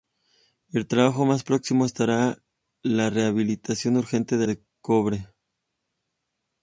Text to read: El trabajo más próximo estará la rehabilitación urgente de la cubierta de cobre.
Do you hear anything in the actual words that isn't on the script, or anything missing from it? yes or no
yes